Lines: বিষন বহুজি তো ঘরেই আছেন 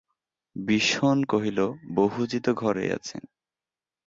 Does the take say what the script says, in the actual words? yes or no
no